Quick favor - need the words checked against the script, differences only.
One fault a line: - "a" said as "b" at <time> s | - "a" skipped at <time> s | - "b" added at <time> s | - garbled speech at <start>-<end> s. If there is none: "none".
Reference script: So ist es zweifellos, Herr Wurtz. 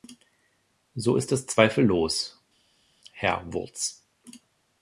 none